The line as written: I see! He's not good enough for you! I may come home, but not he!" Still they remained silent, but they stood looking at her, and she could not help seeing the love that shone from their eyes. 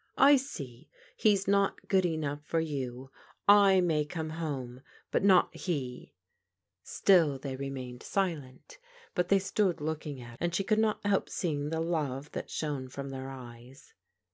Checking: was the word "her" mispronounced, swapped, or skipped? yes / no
yes